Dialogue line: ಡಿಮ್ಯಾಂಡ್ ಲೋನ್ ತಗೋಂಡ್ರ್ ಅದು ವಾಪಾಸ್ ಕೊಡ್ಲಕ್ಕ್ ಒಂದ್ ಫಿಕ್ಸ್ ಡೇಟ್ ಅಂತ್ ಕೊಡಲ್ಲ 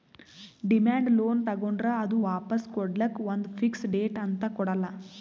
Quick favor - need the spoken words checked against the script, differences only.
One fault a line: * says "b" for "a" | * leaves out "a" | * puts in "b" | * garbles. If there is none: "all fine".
all fine